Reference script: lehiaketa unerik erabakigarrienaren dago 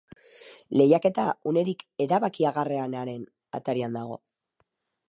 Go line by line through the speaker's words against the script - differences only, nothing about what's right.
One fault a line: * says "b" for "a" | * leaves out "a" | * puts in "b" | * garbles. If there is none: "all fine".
* puts in "atarian"